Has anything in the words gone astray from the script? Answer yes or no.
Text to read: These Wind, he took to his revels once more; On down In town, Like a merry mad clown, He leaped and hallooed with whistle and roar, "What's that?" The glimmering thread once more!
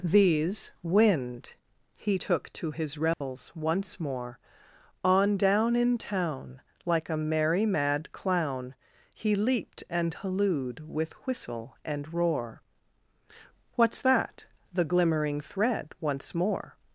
no